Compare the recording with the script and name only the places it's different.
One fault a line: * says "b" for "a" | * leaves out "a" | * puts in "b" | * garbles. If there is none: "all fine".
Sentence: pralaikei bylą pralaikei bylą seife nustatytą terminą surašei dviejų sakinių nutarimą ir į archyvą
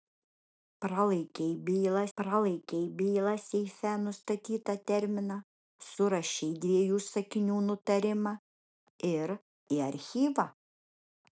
all fine